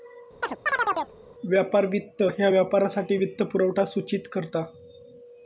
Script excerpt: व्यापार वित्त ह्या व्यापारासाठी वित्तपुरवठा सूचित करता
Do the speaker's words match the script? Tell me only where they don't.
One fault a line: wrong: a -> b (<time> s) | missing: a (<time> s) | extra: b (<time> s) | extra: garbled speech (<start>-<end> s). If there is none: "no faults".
no faults